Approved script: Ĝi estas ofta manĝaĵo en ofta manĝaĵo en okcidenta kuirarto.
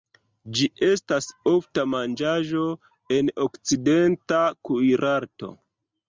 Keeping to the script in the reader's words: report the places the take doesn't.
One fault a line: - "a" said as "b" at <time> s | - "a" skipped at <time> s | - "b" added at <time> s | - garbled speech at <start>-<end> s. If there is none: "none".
- "ofta manĝaĵo en" skipped at 3.3 s